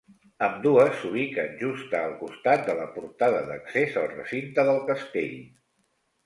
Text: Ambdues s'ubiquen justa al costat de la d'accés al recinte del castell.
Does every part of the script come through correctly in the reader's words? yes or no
no